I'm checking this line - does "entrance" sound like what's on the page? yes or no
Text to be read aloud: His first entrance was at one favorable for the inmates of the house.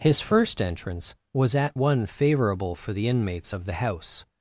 yes